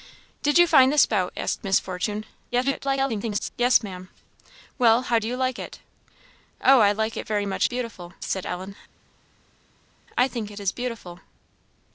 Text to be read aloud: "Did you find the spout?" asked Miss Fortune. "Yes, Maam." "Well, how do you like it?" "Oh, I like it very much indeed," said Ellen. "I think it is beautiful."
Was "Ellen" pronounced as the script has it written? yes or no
yes